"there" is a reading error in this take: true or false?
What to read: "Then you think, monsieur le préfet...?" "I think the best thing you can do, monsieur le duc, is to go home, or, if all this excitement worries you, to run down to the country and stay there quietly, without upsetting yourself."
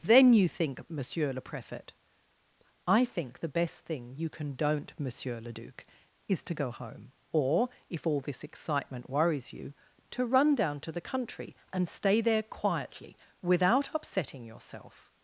false